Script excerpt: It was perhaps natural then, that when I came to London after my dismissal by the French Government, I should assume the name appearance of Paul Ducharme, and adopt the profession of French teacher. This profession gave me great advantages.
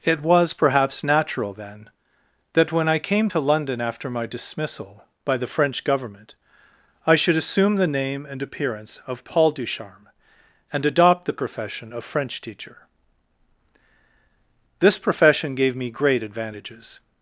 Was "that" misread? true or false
false